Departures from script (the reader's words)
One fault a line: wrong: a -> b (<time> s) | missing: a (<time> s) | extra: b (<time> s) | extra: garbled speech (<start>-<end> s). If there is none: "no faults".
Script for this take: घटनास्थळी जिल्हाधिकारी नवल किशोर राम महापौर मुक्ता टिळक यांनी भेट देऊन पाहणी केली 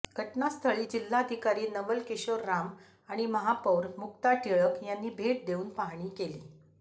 extra: आणि (3.1 s)